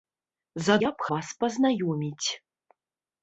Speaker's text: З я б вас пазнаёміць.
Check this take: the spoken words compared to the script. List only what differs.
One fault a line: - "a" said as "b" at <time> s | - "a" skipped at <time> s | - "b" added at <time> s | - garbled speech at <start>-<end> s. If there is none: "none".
none